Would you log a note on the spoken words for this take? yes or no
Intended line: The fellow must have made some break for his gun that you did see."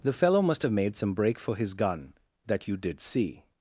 no